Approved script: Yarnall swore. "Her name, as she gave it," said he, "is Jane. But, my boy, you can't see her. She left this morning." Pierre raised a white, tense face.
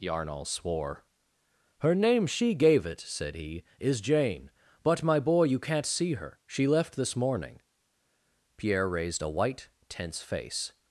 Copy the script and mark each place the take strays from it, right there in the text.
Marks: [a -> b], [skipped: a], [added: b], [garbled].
Yarnall swore. "Her name, [skipped: as] she gave it," said he, "is Jane. But, my boy, you can't see her. She left this morning." Pierre raised a white, tense face.